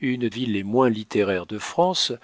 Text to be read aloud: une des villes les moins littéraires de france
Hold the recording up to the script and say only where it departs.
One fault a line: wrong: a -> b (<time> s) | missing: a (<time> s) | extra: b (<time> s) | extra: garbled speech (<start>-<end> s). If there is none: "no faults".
missing: des (0.3 s)